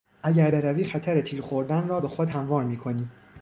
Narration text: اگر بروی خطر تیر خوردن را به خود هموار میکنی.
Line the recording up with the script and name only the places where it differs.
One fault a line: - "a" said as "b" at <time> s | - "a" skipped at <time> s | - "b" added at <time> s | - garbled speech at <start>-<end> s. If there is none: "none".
none